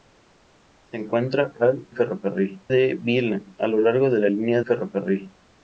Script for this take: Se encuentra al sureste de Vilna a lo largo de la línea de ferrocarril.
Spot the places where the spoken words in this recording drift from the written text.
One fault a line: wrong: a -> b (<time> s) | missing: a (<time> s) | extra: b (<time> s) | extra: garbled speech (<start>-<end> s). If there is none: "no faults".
wrong: sureste -> ferrocarril (1.9 s)
missing: de (4.6 s)